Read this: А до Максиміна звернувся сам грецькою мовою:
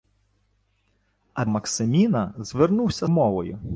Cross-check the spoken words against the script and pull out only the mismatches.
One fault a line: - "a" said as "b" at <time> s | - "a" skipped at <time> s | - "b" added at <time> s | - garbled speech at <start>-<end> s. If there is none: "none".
- "до" skipped at 1.4 s
- "сам грецькою" skipped at 3.1 s